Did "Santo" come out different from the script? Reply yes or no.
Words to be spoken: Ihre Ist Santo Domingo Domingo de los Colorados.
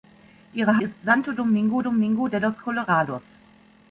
no